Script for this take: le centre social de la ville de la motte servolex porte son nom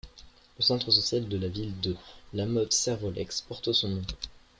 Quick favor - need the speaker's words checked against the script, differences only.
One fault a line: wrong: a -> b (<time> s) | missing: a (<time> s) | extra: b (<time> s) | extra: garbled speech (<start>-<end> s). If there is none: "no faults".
no faults